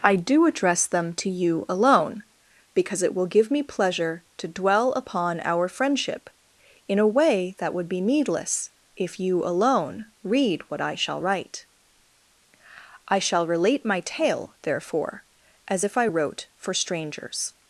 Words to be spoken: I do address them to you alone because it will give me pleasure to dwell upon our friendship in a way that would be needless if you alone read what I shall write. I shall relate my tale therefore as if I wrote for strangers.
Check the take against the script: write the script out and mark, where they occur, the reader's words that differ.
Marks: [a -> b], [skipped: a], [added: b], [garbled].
I do address them to you alone because it will give me pleasure to dwell upon our friendship in a way that would be needless if you alone read what I shall write. I shall relate my tale therefore as if I wrote for strangers.